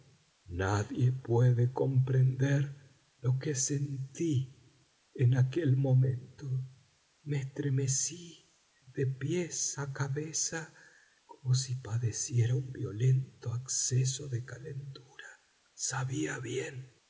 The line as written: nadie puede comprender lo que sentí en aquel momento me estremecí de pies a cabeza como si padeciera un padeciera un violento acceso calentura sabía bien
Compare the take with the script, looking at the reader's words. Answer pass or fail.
fail